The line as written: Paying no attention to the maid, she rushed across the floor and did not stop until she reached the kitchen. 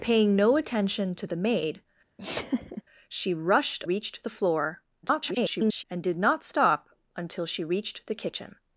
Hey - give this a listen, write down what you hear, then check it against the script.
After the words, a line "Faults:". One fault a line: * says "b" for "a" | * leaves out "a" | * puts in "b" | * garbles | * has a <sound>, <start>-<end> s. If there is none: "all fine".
Paying no attention to the maid, she rushed reached the floor [garbled] and did not stop until she reached the kitchen.
Faults:
* has a laugh, 2.2-2.8 s
* says "reached" for "across"
* garbles